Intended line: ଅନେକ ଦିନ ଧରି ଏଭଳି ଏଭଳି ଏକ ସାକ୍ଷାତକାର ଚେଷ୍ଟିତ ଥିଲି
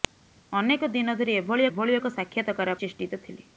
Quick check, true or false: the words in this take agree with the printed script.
true